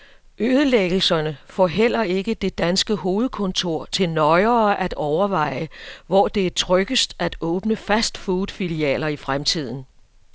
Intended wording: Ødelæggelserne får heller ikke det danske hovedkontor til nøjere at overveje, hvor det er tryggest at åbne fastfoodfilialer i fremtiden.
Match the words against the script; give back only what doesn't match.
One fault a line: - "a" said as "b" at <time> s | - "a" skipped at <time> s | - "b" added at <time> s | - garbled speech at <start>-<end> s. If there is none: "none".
none